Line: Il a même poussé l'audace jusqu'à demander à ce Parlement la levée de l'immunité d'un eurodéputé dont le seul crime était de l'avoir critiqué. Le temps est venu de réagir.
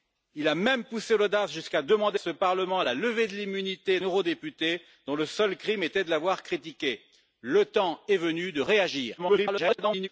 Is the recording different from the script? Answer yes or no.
yes